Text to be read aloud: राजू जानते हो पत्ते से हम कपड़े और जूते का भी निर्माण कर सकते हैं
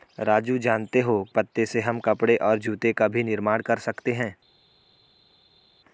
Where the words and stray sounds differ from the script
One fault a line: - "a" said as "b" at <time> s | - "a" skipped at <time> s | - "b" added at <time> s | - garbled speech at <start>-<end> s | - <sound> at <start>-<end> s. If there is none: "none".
none